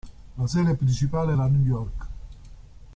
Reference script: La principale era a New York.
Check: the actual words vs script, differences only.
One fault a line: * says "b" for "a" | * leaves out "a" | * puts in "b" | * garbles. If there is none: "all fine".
* puts in "sede"